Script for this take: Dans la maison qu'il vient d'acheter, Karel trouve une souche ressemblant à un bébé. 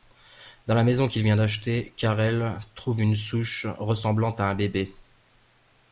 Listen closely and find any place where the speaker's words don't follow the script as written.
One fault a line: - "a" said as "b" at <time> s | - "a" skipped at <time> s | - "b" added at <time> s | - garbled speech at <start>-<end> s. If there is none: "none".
none